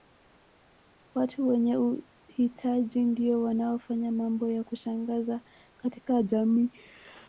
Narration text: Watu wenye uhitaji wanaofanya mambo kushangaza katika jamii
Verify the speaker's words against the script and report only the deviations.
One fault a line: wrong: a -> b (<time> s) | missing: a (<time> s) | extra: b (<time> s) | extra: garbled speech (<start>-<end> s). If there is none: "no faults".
extra: ndio (3.0 s)
extra: ya (4.5 s)